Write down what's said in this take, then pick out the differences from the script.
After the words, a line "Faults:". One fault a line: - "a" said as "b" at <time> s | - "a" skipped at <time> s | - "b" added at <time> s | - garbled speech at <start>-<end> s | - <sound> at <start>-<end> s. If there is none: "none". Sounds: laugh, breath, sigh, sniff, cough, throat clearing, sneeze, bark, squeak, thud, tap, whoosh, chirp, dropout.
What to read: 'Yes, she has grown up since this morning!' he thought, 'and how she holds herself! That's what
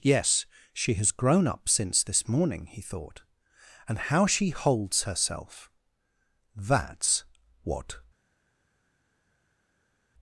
'Yes, she has grown up since this morning!' he thought, 'and how she holds herself! That's what
Faults:
none